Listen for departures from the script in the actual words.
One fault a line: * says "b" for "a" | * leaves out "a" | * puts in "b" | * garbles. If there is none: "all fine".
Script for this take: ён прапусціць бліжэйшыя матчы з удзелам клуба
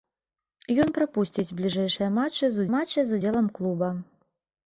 * puts in "матчы з"